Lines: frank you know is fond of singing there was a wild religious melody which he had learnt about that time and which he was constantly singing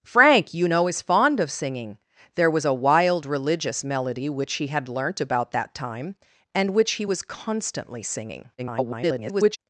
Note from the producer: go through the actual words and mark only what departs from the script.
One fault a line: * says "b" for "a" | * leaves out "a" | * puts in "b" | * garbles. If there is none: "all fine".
* garbles